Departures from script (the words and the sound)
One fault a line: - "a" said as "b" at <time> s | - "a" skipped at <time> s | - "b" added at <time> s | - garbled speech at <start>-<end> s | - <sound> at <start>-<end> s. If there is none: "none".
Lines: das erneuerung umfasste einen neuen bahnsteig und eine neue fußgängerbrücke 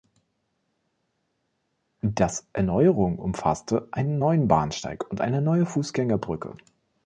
none